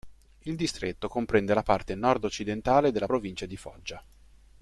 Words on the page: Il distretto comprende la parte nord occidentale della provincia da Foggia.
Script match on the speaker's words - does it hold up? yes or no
no